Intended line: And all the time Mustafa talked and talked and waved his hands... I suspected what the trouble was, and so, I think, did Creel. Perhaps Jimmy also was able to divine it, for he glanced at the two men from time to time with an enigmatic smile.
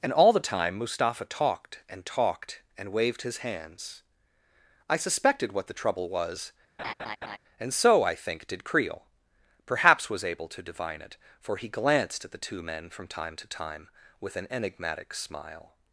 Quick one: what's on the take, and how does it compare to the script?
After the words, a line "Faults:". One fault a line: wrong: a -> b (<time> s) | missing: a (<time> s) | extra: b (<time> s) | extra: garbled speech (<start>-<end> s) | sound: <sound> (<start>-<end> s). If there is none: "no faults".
And all the time Mustafa talked and talked and waved his hands... I suspected what the trouble was, and so, I think, did Creel. Perhaps was able to divine it, for he glanced at the two men from time to time with an enigmatic smile.
Faults:
sound: laugh (6.8-7.4 s)
missing: Jimmy also (10.1 s)